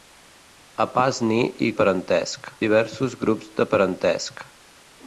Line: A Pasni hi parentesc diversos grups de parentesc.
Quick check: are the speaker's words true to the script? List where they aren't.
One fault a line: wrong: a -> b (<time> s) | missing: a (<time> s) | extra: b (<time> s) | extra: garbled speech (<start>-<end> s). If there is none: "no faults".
no faults